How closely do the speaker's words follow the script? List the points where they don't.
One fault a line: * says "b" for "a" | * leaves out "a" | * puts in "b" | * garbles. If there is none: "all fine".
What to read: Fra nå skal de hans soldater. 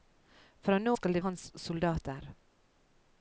all fine